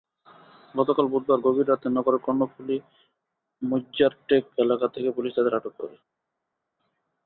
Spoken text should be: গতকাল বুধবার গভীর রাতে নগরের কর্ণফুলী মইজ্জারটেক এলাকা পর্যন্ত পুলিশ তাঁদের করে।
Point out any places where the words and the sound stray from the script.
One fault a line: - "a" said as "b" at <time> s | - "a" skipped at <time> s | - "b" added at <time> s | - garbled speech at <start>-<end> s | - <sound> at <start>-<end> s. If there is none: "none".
- "পর্যন্ত" said as "থেকে" at 4.9 s
- "আটক" added at 5.6 s